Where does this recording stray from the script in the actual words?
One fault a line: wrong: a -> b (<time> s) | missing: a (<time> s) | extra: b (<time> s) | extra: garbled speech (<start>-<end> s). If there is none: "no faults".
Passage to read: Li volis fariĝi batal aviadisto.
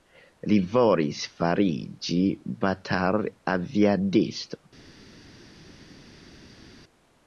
no faults